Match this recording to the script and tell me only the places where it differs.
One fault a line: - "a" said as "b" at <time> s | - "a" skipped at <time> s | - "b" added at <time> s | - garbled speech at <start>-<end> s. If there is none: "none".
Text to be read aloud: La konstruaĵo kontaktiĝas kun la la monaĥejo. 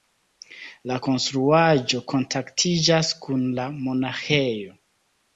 - "la" skipped at 3.7 s